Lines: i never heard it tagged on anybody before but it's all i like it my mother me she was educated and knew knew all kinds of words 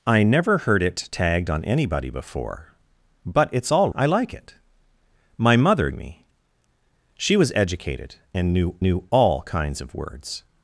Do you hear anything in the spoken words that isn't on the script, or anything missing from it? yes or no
no